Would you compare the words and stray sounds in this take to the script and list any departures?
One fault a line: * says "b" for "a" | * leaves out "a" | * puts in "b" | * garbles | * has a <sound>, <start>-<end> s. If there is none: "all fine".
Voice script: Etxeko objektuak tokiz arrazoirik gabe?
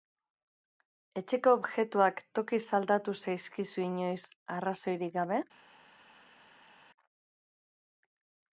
* puts in "aldatu zaizkizu inoiz"